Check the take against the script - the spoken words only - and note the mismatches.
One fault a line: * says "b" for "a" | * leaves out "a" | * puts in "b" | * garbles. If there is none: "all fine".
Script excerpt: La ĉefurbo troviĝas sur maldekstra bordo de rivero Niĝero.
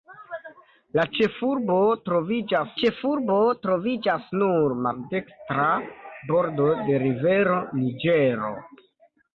* puts in "ĉefurbo troviĝas"